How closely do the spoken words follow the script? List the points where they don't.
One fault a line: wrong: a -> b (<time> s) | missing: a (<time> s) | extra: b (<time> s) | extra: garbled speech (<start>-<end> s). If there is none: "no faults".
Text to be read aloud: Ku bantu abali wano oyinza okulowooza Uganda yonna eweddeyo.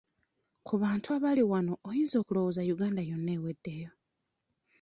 no faults